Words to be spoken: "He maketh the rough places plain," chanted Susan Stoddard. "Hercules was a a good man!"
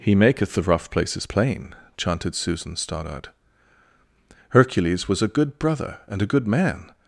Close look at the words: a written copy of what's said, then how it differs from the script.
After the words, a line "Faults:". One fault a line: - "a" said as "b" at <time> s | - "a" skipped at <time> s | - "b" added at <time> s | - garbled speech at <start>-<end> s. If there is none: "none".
"He maketh the rough places plain," chanted Susan Stoddard. "Hercules was a good brother and a good man!"
Faults:
- "good brother and" added at 5.3 s